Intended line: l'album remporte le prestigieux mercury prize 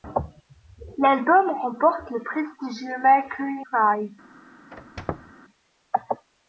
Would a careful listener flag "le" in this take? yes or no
no